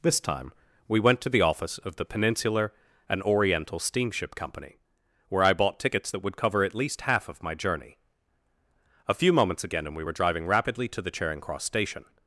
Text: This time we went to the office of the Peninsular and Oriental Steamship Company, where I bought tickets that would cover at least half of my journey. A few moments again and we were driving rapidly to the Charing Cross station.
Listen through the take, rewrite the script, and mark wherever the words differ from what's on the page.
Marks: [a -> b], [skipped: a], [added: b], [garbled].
This time we went to the office of the Peninsular and Oriental Steamship Company, where I bought tickets that would cover at least half of my journey. A few moments again and we were driving rapidly to the Charing Cross station.